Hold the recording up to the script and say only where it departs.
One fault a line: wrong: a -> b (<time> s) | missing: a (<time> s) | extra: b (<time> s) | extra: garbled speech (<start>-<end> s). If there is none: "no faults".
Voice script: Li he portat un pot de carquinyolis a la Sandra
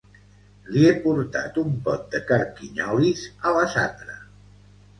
no faults